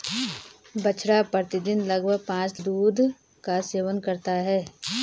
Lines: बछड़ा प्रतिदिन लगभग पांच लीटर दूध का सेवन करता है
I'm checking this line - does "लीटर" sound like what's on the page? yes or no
no